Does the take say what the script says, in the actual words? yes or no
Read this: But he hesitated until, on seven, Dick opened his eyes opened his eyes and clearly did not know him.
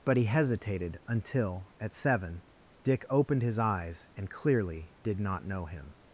no